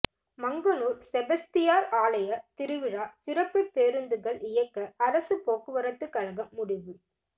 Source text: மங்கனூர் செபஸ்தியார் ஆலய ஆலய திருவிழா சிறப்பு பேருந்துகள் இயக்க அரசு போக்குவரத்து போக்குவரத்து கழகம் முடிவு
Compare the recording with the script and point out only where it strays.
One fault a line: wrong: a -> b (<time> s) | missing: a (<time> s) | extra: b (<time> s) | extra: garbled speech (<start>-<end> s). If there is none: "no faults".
missing: ஆலய (2.3 s)
missing: போக்குவரத்து (6.1 s)